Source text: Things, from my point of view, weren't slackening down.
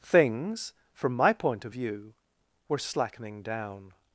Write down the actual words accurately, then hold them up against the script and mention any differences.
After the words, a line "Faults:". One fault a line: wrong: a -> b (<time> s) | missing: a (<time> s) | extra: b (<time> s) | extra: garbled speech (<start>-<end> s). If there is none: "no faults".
Things, from my point of view, were slackening down.
Faults:
wrong: weren't -> were (2.7 s)